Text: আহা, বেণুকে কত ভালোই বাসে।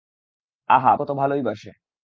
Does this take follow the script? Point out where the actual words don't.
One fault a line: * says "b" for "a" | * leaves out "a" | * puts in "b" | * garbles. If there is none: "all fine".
* leaves out "বেণুকে"